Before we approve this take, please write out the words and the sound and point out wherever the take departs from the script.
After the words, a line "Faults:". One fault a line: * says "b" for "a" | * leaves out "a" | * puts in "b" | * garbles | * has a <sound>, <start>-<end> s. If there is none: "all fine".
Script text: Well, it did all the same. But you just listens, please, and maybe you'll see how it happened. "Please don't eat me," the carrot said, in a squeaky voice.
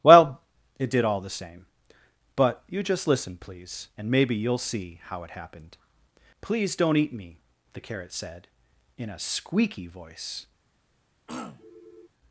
Well, it did all the same. But you just listen, please, and maybe you'll see how it happened. "Please don't eat me," the carrot said, in a squeaky voice.
Faults:
* says "listen" for "listens"
* has a throat clearing, 11.3-12.1 s